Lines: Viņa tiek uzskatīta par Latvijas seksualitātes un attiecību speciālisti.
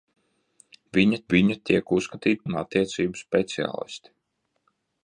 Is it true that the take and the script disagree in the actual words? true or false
true